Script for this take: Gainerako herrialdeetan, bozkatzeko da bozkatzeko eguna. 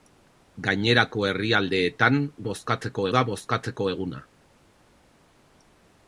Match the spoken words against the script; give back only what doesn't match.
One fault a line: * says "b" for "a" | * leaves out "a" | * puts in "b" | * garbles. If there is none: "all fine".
all fine